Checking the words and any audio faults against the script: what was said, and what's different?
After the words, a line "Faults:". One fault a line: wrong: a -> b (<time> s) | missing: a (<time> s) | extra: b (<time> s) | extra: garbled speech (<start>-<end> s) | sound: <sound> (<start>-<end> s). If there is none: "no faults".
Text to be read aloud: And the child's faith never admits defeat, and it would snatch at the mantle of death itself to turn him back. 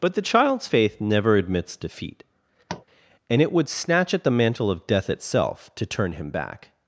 But the child's faith never admits defeat, and it would snatch at the mantle of death itself to turn him back.
Faults:
wrong: And -> But (0.0 s)
sound: tap (2.7-2.9 s)